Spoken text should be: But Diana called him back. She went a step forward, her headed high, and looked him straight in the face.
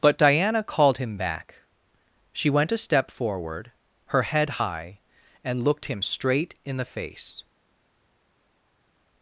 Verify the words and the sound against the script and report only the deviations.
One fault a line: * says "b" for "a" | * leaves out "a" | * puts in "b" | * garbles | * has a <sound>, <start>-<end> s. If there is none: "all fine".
* says "head" for "headed"